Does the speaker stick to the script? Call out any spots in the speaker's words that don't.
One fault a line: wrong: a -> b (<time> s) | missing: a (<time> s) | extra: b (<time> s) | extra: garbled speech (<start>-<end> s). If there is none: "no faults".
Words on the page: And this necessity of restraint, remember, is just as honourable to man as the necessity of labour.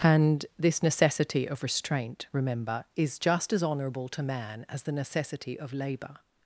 no faults